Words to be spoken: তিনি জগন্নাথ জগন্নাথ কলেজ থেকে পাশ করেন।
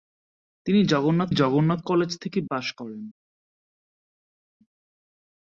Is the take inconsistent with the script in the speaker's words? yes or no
no